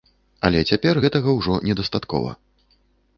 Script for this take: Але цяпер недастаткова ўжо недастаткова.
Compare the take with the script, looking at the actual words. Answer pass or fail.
fail